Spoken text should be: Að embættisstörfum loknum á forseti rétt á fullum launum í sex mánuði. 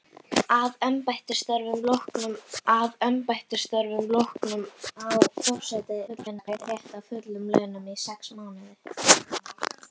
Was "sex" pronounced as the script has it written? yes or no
yes